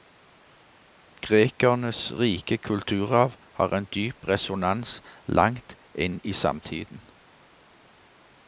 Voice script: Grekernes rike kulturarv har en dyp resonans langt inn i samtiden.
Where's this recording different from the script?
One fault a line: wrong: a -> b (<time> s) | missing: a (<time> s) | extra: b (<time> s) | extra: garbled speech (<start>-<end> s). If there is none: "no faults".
no faults